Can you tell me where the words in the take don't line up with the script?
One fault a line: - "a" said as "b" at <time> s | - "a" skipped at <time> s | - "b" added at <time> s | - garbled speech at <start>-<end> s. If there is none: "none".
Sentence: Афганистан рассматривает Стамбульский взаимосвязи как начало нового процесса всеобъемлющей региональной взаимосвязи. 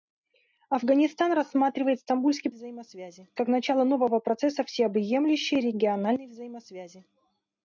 none